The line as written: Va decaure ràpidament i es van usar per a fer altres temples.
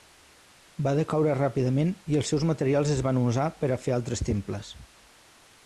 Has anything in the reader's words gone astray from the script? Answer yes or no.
yes